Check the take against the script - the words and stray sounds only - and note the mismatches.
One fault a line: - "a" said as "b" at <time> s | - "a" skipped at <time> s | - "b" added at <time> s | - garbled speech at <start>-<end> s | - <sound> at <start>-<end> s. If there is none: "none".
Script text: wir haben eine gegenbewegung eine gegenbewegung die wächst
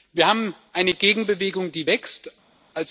- "eine gegenbewegung" skipped at 1.7 s